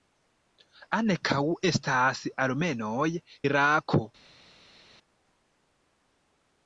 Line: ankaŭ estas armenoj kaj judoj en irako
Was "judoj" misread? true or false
true